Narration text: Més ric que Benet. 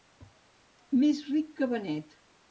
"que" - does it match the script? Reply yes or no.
yes